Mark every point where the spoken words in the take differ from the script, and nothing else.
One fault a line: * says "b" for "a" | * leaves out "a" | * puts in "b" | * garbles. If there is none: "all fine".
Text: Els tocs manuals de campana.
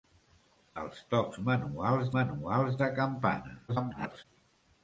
* puts in "manuals"
* garbles